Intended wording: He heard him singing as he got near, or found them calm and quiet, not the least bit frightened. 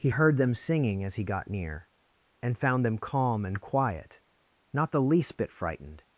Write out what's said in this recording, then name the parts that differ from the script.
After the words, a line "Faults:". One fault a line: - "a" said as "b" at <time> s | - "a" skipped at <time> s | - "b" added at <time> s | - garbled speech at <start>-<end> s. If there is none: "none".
He heard them singing as he got near, and found them calm and quiet, not the least bit frightened.
Faults:
- "him" said as "them" at 0.4 s
- "or" said as "and" at 2.4 s